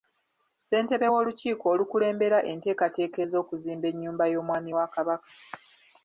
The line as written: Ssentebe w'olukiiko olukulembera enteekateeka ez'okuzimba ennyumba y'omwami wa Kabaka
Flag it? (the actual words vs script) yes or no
no